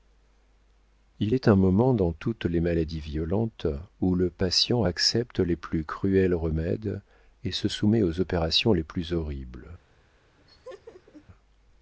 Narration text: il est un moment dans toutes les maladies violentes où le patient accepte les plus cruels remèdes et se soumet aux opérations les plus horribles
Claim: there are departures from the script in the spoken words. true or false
false